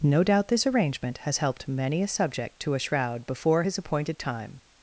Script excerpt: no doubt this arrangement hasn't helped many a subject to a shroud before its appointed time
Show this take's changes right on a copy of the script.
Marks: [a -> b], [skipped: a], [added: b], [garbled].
no doubt this arrangement [hasn't -> has] helped many a subject to a shroud before [its -> his] appointed time